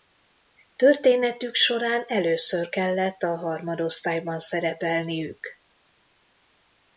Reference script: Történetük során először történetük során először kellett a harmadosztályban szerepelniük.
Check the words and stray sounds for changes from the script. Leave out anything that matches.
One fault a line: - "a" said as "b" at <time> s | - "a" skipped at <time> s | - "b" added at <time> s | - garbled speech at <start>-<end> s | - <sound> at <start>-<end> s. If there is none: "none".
- "történetük során először" skipped at 2.7 s